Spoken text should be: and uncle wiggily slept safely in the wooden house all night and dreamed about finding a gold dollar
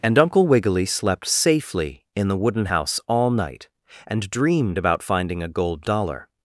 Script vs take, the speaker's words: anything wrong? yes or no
no